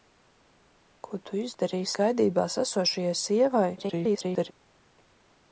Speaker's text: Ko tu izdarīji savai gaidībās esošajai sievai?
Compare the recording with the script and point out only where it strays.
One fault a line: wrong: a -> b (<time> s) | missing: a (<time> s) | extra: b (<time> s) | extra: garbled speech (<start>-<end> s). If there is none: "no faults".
missing: savai (1.9 s)
extra: garbled speech (3.8-4.5 s)